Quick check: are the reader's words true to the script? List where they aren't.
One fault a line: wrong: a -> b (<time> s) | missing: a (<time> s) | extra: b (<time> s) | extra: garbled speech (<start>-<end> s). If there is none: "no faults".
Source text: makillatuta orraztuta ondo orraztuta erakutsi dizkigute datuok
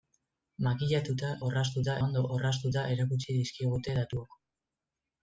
no faults